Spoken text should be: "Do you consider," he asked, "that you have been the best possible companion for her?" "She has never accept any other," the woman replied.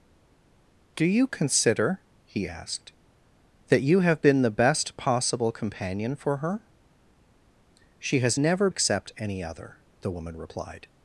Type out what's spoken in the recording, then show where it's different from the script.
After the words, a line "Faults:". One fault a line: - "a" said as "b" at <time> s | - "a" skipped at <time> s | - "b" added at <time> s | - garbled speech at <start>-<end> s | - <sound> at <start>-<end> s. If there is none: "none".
"Do you consider," he asked, "that you have been the best possible companion for her?" "She has never accept any other," the woman replied.
Faults:
none